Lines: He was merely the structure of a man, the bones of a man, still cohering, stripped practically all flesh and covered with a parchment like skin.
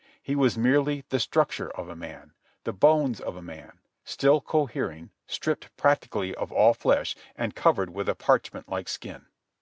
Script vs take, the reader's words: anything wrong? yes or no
yes